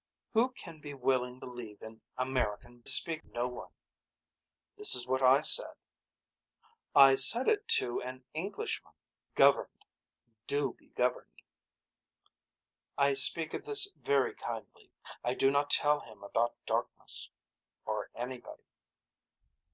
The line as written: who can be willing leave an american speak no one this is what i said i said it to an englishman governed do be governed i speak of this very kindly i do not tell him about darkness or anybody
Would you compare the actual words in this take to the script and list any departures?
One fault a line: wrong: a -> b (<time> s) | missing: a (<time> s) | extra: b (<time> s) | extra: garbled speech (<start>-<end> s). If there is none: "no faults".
no faults